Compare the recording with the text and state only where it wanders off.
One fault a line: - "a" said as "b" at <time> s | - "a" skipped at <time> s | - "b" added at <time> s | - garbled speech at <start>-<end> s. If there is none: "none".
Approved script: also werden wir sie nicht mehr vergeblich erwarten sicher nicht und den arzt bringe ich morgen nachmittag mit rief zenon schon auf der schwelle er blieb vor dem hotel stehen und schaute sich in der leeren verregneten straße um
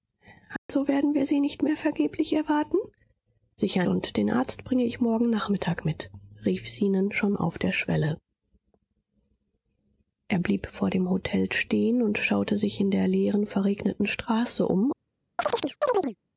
- "nicht" skipped at 3.9 s